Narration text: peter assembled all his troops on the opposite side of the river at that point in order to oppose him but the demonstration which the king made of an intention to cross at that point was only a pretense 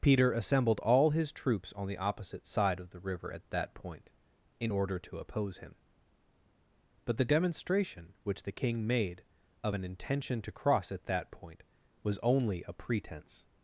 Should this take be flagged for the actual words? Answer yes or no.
no